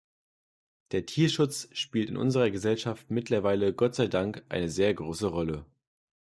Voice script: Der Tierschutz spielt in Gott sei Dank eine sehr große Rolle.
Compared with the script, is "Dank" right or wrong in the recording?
right